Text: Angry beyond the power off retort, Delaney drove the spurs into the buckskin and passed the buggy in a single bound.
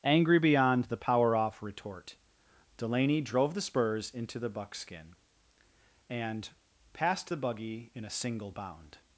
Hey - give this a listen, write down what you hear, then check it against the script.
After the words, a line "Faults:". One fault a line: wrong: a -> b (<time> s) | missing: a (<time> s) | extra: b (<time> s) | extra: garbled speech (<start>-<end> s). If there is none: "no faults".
Angry beyond the power off retort, Delaney drove the spurs into the buckskin and passed the buggy in a single bound.
Faults:
no faults